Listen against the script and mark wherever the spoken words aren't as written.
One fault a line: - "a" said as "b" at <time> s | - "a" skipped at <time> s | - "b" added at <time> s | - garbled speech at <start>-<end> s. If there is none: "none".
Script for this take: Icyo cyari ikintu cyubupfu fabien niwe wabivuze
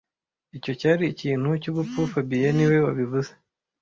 none